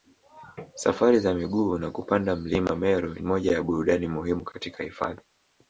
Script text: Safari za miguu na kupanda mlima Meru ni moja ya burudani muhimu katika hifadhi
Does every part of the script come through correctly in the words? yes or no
no